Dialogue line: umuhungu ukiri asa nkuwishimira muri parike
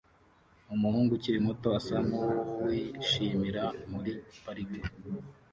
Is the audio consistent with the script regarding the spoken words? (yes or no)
no